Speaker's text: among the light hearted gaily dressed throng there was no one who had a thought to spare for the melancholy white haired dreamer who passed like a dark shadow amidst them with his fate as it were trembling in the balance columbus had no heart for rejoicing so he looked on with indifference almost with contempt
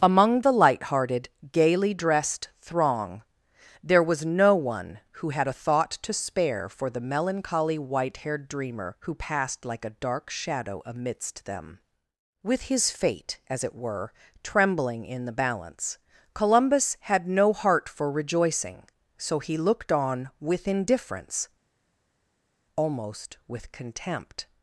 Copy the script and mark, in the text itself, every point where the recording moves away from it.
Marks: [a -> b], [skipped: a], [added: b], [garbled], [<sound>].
among the light hearted gaily dressed throng there was no one who had a thought to spare for the melancholy white haired dreamer who passed like a dark shadow amidst them with his fate as it were trembling in the balance columbus had no heart for rejoicing so he looked on with indifference almost with contempt